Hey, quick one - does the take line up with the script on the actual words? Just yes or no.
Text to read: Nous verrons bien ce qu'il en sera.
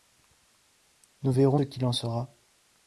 no